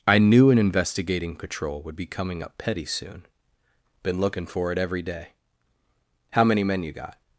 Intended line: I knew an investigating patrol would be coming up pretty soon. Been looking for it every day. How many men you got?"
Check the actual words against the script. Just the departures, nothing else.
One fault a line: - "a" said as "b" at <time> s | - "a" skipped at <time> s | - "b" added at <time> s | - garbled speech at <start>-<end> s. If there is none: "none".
- "pretty" said as "petty" at 2.6 s